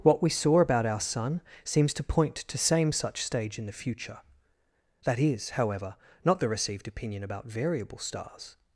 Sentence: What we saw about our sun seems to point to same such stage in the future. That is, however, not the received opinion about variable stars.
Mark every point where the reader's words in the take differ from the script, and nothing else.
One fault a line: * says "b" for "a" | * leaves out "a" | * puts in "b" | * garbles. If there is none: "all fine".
all fine